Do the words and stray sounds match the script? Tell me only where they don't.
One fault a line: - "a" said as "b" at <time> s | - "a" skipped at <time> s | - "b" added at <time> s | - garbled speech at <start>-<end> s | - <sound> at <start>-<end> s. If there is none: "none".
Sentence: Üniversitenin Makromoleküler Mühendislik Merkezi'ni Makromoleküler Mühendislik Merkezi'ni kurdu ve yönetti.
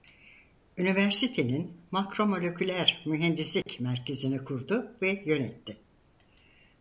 - dropout at 3.6-3.7 s
- "Makromoleküler Mühendislik Merkezi'ni" skipped at 4.4 s